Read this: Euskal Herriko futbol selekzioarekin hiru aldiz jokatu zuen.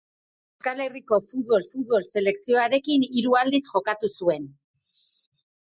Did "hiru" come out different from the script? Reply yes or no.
no